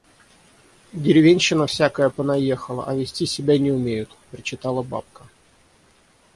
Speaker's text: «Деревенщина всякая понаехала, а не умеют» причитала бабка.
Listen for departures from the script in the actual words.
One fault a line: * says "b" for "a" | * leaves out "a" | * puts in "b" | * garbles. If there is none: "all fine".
* puts in "вести себя"